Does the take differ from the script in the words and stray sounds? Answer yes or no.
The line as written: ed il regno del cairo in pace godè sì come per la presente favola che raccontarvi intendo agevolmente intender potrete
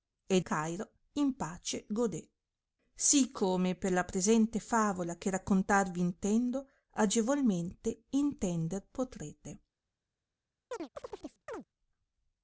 yes